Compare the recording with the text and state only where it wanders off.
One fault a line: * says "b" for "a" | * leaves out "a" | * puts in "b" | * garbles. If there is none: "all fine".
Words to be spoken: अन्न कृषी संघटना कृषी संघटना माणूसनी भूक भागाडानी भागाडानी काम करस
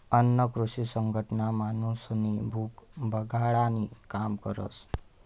* leaves out "कृषी संघटना"
* leaves out "भागाडानी"